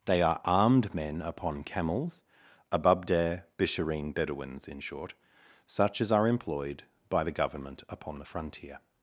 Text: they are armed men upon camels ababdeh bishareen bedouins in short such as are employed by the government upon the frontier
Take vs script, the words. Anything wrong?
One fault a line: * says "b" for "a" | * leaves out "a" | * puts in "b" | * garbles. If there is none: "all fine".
all fine